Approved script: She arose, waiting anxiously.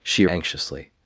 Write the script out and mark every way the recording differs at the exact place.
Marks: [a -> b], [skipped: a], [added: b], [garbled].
She [skipped: arose, waiting] anxiously.